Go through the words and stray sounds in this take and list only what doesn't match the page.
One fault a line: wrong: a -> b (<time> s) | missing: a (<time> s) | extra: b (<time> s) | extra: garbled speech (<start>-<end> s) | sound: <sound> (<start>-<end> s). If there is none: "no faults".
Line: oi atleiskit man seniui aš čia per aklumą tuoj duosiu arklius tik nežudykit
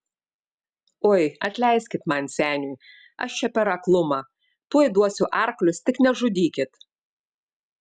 no faults